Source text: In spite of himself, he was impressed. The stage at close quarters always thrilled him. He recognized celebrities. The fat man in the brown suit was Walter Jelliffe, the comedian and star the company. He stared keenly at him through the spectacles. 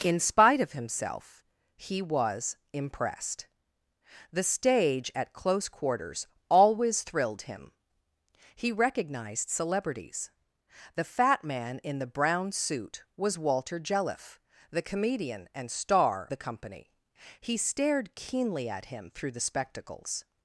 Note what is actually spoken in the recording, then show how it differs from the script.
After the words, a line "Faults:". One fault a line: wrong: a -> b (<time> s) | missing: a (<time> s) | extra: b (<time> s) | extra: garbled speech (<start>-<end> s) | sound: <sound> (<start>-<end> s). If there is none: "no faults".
In spite of himself, he was impressed. The stage at close quarters always thrilled him. He recognized celebrities. The fat man in the brown suit was Walter Jelliffe, the comedian and star the company. He stared keenly at him through the spectacles.
Faults:
no faults